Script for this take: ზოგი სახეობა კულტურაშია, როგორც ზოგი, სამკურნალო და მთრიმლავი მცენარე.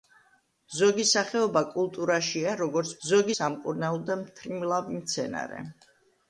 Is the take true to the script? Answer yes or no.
yes